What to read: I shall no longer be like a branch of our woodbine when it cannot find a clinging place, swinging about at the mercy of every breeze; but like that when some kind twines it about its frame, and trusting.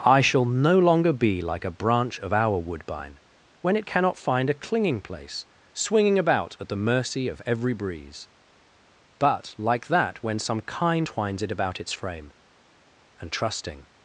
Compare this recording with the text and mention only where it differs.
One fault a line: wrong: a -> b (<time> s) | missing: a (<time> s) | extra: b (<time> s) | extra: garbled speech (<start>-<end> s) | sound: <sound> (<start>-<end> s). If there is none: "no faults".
no faults